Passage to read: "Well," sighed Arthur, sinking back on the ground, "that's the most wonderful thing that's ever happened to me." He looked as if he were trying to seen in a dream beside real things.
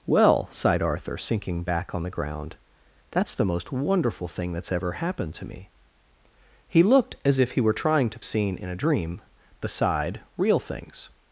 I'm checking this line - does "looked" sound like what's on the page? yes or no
yes